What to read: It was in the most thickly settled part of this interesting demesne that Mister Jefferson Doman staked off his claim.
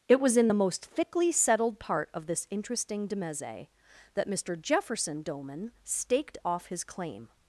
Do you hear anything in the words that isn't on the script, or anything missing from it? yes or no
no